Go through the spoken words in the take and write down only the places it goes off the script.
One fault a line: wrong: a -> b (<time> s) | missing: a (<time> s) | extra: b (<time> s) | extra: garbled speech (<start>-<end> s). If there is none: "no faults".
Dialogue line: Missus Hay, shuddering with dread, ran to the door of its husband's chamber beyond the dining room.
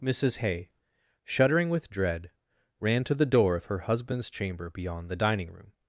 wrong: its -> her (3.7 s)